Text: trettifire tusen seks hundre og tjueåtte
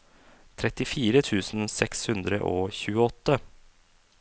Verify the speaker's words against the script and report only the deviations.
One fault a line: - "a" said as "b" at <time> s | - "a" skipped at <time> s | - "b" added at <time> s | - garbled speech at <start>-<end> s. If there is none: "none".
none